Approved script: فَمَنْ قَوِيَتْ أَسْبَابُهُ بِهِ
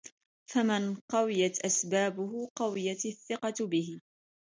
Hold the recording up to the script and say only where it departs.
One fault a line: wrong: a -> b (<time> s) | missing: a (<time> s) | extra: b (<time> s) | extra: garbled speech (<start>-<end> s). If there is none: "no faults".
extra: قَوِيَتْ الثِّقَةُ (2.5 s)